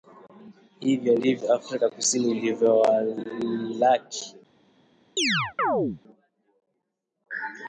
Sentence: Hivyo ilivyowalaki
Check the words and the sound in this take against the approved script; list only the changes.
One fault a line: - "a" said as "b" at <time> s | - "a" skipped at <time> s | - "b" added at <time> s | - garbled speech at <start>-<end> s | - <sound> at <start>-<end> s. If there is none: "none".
- "ndivyo Afrika Kusini" added at 1.1 s
- chirp at 5.2-6.0 s